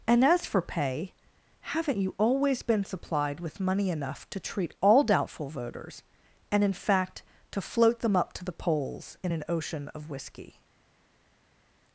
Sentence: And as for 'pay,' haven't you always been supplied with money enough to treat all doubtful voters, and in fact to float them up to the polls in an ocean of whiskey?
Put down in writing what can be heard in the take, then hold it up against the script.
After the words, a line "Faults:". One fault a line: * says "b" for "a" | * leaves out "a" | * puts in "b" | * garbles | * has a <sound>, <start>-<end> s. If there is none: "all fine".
And as for 'pay,' haven't you always been supplied with money enough to treat all doubtful voters, and in fact to float them up to the polls in an ocean of whiskey?
Faults:
all fine